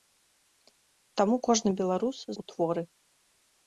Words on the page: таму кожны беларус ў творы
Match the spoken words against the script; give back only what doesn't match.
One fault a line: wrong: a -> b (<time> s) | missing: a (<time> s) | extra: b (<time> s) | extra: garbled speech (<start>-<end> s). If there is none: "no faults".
no faults